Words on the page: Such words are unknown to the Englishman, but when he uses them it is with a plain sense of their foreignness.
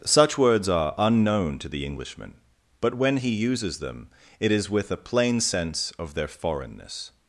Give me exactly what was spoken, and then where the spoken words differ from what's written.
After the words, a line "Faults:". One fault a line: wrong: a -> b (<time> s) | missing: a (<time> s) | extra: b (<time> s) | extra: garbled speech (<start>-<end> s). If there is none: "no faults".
Such words are unknown to the Englishman, but when he uses them it is with a plain sense of their foreignness.
Faults:
no faults